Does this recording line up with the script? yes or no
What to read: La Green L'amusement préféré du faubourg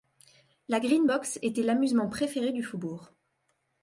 no